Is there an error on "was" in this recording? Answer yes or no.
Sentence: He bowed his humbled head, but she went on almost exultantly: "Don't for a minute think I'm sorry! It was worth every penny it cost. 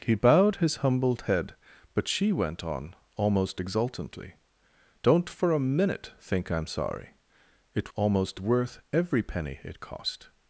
yes